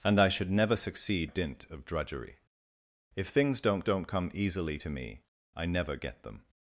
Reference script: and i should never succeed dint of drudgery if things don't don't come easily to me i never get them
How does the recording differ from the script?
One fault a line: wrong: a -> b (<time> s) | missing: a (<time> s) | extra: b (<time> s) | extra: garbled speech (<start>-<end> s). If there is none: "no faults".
no faults